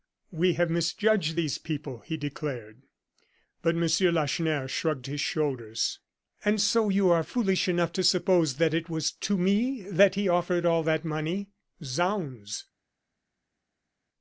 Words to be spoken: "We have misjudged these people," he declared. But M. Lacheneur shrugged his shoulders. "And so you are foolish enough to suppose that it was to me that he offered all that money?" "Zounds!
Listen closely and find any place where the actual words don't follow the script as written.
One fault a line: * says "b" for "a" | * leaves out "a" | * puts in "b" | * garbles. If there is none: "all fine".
all fine